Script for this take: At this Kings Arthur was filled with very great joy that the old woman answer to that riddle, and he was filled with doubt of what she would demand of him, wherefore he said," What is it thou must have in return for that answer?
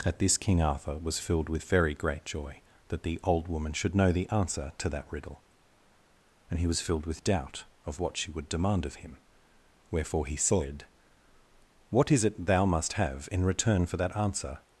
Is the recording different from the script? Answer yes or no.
yes